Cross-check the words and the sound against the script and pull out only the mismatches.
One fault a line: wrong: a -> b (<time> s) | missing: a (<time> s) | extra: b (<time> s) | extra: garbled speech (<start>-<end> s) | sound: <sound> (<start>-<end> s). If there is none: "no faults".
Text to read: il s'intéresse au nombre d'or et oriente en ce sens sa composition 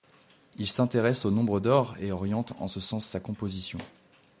no faults